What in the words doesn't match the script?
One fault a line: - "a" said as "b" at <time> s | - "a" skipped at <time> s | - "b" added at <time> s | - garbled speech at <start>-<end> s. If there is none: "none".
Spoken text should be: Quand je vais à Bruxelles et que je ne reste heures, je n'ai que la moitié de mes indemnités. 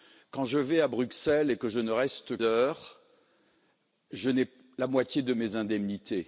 none